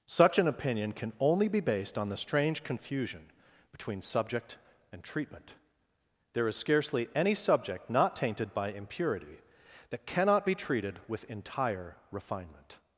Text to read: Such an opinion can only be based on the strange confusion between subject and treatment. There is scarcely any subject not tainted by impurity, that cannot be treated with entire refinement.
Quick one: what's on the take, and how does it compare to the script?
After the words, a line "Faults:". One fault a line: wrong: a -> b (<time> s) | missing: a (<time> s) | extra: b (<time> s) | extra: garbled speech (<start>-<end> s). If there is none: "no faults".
Such an opinion can only be based on the strange confusion between subject and treatment. There is scarcely any subject not tainted by impurity, that cannot be treated with entire refinement.
Faults:
no faults